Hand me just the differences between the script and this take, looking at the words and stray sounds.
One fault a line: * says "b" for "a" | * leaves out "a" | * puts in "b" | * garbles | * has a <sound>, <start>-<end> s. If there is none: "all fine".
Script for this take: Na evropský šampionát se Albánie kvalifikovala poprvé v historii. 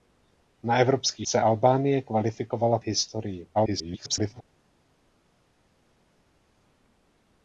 * leaves out "šampionát"
* leaves out "poprvé"
* garbles